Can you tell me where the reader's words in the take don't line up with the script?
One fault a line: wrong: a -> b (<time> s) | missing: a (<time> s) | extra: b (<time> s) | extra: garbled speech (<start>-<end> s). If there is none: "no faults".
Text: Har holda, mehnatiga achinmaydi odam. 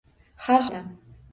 missing: holda mehnatiga achinmaydi (0.7 s)